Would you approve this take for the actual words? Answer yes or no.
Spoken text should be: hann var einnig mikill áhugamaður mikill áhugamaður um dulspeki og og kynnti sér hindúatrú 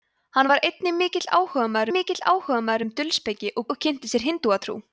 yes